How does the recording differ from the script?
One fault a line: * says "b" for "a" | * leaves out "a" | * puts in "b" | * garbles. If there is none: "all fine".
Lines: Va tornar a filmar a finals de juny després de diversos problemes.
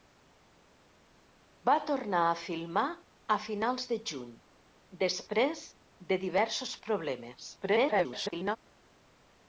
* garbles